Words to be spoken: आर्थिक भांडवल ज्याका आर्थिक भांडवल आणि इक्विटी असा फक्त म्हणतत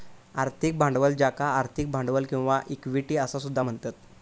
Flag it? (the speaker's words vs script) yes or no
yes